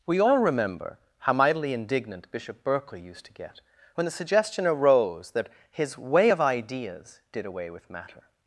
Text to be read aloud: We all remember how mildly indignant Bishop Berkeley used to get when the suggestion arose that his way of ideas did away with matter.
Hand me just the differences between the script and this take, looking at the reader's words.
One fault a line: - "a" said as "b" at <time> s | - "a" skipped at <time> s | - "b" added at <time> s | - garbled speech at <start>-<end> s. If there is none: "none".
- "mildly" said as "mightily" at 1.3 s